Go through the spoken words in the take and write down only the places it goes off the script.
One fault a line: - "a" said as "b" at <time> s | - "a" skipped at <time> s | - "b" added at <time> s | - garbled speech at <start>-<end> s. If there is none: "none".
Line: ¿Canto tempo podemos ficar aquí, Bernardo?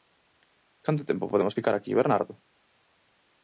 none